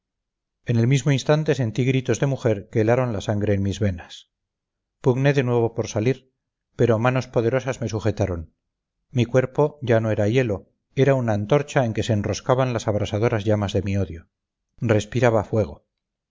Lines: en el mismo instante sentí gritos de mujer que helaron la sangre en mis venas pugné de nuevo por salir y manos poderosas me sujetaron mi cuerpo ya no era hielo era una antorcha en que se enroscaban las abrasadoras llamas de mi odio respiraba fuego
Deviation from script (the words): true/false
true